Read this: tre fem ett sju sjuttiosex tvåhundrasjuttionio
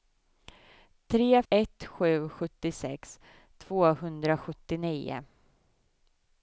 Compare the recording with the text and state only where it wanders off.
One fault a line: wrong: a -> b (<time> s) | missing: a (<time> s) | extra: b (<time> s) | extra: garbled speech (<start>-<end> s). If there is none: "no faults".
missing: fem (1.4 s)